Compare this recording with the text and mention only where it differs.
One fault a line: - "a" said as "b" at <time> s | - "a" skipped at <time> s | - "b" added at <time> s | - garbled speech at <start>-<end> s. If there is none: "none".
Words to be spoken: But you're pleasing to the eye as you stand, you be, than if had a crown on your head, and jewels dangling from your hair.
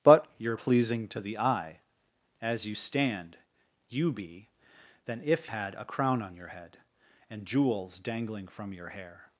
none